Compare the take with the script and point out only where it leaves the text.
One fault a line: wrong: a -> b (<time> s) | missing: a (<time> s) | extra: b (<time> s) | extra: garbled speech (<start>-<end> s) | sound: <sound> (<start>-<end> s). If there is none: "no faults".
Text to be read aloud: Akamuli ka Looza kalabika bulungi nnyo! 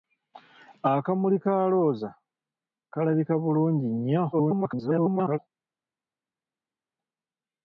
extra: garbled speech (4.3-5.4 s)